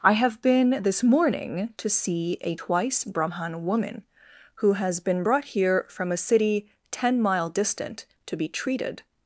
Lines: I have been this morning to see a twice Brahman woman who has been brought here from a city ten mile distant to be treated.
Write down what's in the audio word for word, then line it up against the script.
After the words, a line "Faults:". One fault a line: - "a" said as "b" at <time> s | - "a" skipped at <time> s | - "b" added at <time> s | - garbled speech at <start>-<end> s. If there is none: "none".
I have been this morning to see a twice Brahman woman who has been brought here from a city ten mile distant to be treated.
Faults:
none